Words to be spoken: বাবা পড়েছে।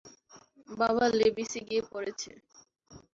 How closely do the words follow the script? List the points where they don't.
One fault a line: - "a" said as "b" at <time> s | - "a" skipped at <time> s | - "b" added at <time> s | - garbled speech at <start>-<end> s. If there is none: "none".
- "লেভিসে গিয়ে" added at 1.2 s